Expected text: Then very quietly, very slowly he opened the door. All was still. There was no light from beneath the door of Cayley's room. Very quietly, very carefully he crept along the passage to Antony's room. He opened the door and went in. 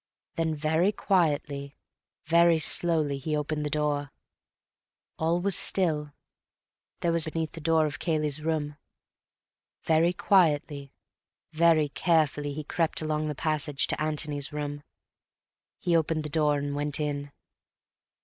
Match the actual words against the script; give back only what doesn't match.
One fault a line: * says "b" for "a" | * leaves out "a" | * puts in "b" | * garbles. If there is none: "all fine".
* leaves out "no light from"